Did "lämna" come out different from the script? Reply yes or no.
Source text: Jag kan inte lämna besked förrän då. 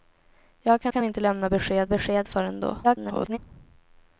no